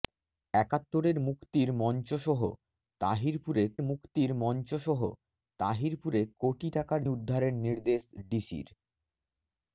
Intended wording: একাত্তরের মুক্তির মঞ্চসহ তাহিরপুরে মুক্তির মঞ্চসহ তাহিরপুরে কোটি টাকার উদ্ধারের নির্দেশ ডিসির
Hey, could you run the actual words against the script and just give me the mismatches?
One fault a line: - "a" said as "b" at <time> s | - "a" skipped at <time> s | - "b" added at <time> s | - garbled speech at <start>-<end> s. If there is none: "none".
none